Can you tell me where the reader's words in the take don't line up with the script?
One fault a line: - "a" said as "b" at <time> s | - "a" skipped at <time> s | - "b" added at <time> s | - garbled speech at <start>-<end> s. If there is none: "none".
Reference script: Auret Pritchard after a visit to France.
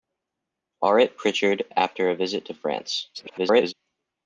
- garbled speech at 3.1-3.7 s